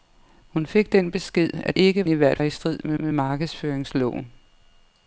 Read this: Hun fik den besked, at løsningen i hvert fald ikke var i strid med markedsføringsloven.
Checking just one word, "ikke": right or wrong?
wrong